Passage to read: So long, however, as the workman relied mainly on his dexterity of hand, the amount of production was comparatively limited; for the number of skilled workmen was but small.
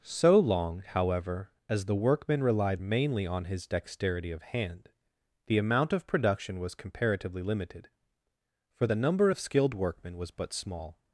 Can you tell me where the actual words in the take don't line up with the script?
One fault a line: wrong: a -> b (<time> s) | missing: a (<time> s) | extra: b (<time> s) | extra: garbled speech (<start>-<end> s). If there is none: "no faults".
no faults